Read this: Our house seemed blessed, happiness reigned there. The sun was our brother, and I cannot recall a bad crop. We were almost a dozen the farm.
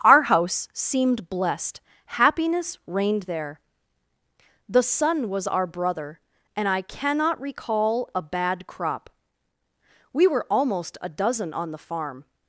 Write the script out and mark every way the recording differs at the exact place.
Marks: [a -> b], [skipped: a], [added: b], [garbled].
Our house seemed blessed, happiness reigned there. The sun was our brother, and I cannot recall a bad crop. We were almost a dozen [added: on] the farm.